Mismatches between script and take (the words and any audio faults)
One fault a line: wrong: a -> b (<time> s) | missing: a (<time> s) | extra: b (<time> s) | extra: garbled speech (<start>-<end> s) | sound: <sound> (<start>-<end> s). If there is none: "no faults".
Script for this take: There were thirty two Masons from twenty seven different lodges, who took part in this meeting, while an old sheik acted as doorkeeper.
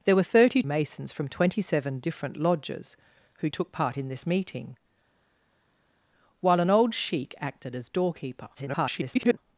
missing: two (0.6 s)
extra: garbled speech (8.5-9.4 s)